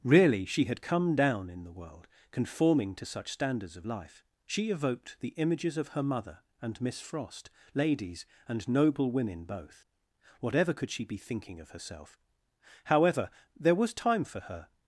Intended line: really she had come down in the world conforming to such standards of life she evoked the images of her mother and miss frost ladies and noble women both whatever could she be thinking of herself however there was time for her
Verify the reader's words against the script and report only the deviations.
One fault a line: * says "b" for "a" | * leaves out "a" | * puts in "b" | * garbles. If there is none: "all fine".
all fine